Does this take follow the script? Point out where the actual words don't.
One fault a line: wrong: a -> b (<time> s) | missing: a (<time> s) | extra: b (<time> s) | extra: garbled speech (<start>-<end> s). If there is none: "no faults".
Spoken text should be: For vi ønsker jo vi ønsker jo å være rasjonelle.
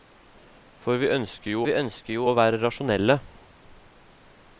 no faults